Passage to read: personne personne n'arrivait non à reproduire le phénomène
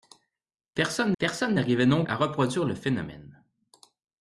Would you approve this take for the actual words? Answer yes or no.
yes